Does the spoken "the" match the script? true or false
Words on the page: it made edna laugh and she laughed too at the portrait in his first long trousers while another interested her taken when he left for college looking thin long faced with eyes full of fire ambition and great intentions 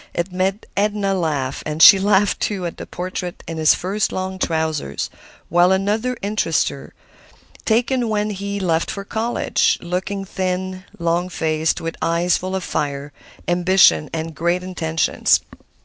true